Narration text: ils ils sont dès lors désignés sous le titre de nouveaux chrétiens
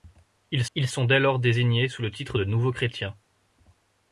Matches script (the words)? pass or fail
pass